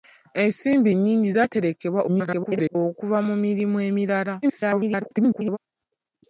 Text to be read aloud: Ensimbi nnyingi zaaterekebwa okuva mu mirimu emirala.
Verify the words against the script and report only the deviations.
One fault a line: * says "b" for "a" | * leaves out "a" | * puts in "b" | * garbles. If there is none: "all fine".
* garbles
* garbles